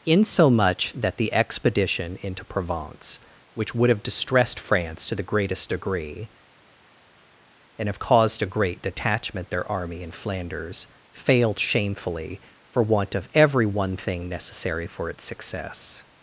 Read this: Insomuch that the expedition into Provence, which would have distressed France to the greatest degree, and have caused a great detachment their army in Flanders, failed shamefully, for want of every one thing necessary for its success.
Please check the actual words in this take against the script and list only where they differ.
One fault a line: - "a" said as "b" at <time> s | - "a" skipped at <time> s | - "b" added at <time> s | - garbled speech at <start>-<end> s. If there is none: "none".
none